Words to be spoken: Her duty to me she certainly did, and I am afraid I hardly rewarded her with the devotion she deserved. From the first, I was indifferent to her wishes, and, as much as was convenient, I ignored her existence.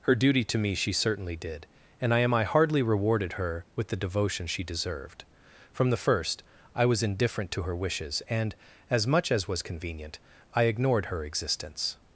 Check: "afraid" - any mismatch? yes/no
yes